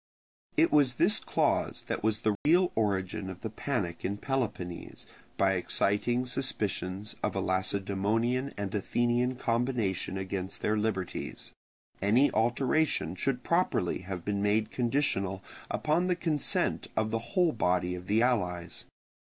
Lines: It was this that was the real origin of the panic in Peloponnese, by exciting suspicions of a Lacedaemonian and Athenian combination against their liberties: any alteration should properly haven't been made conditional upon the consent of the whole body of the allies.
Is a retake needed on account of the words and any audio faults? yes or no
yes